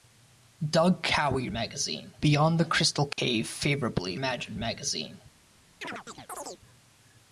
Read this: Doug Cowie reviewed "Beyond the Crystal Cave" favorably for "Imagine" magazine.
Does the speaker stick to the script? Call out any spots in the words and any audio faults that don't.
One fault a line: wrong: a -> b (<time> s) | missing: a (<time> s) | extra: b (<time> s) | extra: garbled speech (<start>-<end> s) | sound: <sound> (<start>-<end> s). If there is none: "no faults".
wrong: reviewed -> magazine (1.5 s)
sound: dropout (3.1-3.2 s)
missing: for (4.2 s)
sound: chirp (5.8-6.6 s)